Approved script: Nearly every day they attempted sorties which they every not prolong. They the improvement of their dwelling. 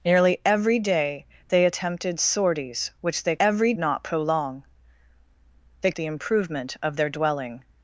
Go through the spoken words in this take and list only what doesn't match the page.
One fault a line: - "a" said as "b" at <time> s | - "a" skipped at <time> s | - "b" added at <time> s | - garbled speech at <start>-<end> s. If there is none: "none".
none